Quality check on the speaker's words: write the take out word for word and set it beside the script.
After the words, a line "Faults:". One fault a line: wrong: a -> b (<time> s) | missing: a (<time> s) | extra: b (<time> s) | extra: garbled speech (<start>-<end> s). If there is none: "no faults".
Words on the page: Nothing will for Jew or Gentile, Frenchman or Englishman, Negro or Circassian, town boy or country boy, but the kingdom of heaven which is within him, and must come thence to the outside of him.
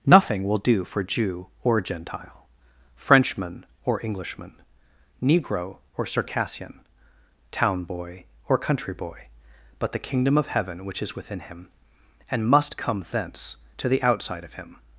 Nothing will do for Jew or Gentile, Frenchman or Englishman, Negro or Circassian, town boy or country boy, but the kingdom of heaven which is within him, and must come thence to the outside of him.
Faults:
extra: do (0.6 s)